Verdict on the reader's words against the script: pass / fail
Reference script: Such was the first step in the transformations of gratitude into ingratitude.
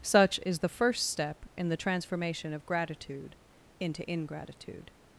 fail